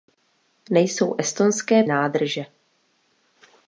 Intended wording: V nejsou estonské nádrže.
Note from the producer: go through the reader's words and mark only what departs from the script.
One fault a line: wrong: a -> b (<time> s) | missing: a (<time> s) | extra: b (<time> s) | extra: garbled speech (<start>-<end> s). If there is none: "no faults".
no faults